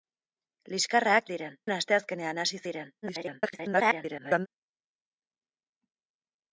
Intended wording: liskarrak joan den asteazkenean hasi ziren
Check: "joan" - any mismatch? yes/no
yes